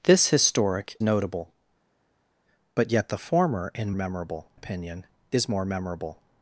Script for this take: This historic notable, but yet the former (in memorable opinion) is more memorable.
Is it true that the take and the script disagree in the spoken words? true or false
false